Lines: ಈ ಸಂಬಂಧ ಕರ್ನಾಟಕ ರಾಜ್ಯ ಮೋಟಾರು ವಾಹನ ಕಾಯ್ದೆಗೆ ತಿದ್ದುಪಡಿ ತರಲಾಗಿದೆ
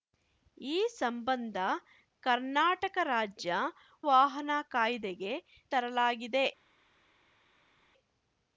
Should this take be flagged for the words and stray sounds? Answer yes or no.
yes